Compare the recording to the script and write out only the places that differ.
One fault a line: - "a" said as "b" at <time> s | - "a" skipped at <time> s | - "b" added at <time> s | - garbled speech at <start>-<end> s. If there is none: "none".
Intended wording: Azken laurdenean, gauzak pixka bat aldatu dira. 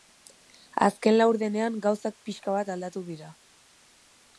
none